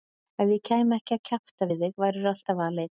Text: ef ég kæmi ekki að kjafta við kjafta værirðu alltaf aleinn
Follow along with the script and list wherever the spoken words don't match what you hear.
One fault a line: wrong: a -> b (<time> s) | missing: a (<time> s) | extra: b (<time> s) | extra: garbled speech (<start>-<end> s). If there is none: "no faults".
wrong: kjafta -> þig (1.9 s)